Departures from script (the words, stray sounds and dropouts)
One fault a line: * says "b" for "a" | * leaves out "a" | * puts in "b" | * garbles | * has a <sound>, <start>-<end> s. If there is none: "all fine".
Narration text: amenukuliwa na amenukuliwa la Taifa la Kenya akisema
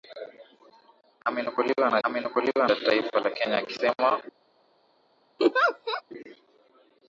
* has a laugh, 5.4-6.0 s